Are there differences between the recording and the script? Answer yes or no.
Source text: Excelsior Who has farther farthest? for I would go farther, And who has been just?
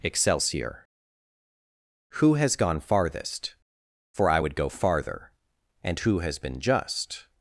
yes